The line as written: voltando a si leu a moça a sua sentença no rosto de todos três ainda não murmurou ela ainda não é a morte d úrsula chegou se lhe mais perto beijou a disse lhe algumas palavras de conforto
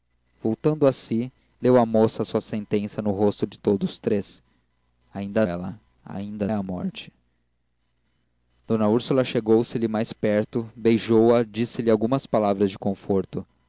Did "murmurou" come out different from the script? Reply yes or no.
yes